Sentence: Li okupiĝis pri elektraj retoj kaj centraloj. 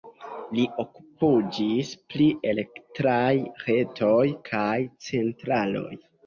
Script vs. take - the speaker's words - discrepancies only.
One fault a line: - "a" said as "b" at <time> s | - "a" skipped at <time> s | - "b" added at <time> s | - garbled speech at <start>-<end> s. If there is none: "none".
none